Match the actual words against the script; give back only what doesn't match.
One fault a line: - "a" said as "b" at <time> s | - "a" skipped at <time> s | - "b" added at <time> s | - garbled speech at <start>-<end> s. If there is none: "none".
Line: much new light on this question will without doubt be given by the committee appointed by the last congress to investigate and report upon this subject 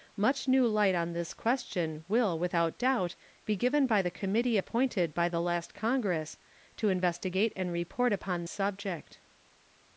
- "this" skipped at 8.4 s